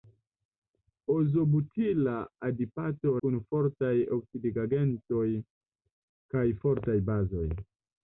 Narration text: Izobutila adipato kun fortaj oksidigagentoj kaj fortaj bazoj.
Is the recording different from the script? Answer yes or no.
no